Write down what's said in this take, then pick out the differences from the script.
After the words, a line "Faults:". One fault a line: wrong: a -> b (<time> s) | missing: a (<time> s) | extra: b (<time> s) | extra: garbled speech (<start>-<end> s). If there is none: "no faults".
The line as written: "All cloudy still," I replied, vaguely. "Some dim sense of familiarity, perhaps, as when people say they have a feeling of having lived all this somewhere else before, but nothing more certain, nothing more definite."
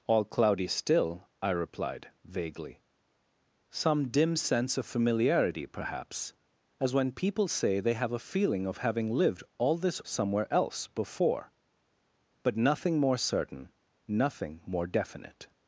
"All cloudy still," I replied, vaguely. "Some dim sense of familiarity, perhaps, as when people say they have a feeling of having lived all this somewhere else before, but nothing more certain, nothing more definite."
Faults:
no faults